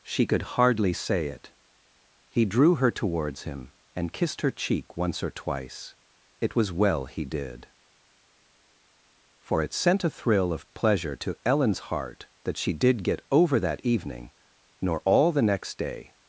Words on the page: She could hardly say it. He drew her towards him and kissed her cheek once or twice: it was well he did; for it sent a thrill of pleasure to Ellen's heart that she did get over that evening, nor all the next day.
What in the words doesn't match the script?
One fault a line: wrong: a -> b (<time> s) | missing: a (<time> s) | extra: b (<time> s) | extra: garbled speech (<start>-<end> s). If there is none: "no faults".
no faults